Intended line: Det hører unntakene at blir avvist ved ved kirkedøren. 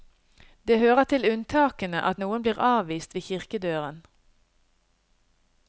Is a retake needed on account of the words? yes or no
yes